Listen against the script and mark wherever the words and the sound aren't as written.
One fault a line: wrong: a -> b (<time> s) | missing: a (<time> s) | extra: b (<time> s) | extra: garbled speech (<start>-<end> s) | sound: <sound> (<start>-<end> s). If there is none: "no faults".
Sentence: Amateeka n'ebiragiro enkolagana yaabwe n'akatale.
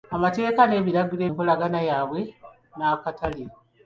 no faults